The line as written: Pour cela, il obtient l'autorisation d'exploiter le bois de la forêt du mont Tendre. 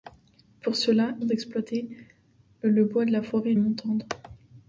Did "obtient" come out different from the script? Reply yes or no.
yes